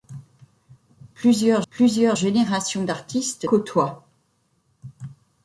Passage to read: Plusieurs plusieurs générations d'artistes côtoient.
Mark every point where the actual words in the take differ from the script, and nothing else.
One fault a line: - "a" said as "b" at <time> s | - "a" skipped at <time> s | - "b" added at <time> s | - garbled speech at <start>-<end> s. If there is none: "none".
none